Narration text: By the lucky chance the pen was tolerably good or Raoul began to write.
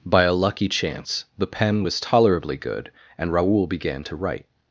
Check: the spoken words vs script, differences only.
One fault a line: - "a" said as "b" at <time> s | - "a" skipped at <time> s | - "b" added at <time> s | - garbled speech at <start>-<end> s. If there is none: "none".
- "the" said as "a" at 0.2 s
- "or" said as "and" at 3.2 s